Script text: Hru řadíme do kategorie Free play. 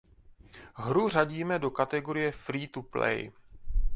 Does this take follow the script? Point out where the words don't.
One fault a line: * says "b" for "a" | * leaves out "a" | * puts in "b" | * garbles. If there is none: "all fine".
* puts in "to"